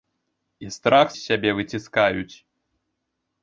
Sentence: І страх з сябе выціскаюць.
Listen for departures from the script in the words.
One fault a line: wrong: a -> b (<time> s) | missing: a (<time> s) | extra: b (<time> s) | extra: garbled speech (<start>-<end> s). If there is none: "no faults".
no faults